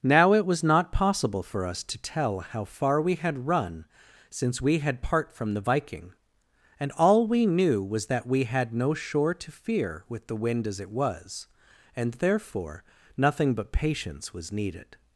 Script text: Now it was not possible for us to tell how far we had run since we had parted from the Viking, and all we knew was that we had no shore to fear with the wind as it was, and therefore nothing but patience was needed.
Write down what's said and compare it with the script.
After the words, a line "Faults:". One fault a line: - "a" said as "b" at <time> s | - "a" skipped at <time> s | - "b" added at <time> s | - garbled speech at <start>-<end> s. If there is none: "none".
Now it was not possible for us to tell how far we had run since we had part from the Viking, and all we knew was that we had no shore to fear with the wind as it was, and therefore nothing but patience was needed.
Faults:
- "parted" said as "part" at 5.0 s